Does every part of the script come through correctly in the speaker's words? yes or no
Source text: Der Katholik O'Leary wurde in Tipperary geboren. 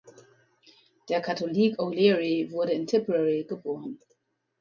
yes